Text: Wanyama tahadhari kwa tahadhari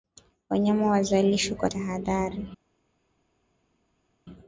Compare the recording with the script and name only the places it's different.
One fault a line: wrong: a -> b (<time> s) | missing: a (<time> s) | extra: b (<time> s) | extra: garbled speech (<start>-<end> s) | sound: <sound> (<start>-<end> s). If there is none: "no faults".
wrong: tahadhari -> wazalishwe (0.9 s)